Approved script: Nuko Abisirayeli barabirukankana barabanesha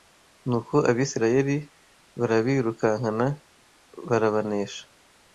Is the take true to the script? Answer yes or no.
yes